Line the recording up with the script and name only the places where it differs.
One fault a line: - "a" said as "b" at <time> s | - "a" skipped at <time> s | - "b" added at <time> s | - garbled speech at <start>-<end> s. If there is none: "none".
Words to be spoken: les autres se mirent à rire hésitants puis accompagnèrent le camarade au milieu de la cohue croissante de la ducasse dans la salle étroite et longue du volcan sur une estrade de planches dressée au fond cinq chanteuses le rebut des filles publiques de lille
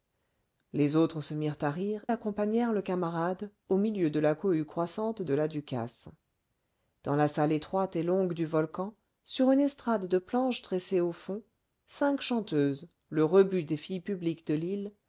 - "hésitants puis" skipped at 2.0 s